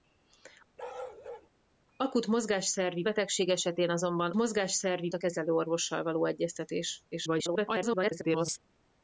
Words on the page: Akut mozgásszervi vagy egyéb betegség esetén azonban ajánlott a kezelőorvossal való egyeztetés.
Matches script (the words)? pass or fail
fail